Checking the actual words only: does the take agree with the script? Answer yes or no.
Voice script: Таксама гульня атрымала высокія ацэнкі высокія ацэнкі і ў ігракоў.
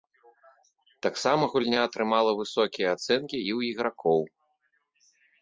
no